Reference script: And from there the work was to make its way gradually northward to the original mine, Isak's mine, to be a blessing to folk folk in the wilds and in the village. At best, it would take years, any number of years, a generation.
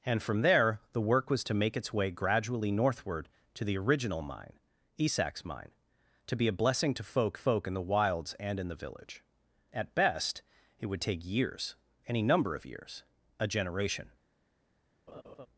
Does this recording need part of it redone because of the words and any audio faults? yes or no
yes